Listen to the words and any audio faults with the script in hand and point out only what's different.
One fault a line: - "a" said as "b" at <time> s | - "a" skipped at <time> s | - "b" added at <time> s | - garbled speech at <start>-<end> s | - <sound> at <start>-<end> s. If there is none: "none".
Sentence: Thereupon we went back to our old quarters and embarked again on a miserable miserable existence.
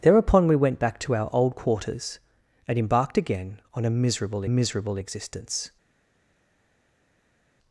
none